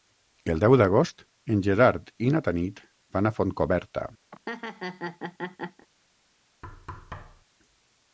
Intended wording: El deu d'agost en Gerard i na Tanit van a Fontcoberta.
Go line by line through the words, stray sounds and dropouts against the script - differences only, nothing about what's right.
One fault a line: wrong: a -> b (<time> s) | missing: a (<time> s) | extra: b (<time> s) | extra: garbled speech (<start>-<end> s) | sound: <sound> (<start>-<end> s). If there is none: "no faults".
sound: laugh (4.3-5.9 s)
sound: thud (6.6-7.5 s)